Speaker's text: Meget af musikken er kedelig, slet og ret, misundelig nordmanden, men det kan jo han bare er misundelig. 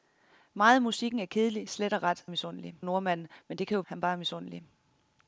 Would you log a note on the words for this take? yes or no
no